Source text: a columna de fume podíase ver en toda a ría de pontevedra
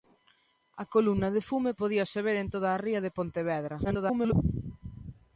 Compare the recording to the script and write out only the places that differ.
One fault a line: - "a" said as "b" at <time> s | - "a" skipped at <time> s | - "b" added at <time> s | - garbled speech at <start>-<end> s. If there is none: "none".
- garbled speech at 3.8-4.3 s